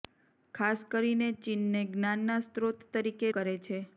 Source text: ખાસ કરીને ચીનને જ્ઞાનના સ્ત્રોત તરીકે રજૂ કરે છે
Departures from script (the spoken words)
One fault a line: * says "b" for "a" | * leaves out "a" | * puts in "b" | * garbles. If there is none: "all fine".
* leaves out "રજૂ"